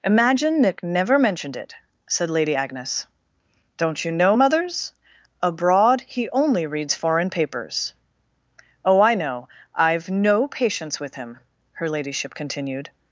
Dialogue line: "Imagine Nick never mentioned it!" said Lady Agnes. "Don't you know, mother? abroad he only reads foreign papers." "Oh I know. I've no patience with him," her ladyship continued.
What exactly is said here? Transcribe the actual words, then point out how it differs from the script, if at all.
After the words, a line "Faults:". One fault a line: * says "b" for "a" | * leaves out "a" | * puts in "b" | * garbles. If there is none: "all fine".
"Imagine Nick never mentioned it!" said Lady Agnes. "Don't you know, mothers? abroad he only reads foreign papers." "Oh I know. I've no patience with him," her ladyship continued.
Faults:
* says "mothers" for "mother"